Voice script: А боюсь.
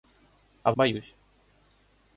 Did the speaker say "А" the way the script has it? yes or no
yes